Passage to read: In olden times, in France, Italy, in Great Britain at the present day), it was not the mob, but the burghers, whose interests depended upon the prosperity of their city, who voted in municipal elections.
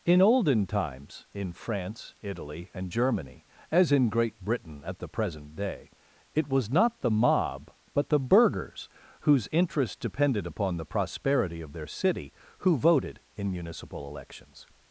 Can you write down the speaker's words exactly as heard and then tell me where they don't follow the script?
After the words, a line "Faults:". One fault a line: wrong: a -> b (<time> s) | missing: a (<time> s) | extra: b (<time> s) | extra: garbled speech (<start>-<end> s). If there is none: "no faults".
In olden times, in France, Italy, and Germany (as in Great Britain at the present day), it was not the mob, but the burghers, whose interests depended upon the prosperity of their city, who voted in municipal elections.
Faults:
extra: and Germany as (2.7 s)